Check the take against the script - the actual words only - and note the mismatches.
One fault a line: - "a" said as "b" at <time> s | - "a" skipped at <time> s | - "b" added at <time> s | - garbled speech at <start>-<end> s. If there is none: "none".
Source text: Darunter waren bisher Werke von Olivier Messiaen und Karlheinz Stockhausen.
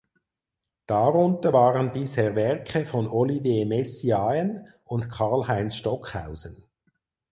none